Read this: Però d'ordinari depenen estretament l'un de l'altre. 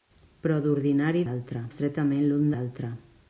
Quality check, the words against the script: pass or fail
fail